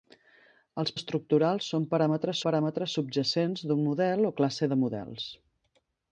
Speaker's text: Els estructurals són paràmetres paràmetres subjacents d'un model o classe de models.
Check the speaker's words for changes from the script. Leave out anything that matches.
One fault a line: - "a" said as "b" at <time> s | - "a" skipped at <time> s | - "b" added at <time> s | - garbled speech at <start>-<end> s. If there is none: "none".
none